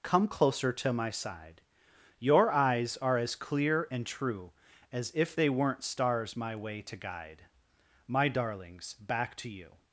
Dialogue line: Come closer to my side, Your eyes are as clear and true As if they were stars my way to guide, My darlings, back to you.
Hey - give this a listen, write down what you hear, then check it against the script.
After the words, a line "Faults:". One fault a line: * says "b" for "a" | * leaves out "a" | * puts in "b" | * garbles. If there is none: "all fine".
Come closer to my side, Your eyes are as clear and true As if they weren't stars my way to guide, My darlings, back to you.
Faults:
* says "weren't" for "were"